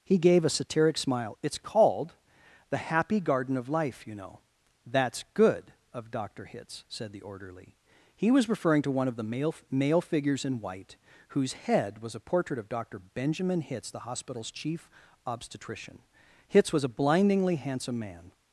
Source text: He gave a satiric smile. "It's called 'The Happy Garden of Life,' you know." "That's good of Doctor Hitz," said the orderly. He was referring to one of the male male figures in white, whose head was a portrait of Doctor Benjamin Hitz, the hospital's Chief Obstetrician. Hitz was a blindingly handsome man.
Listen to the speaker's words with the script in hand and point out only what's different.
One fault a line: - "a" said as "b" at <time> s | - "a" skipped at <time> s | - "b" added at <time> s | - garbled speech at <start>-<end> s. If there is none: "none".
none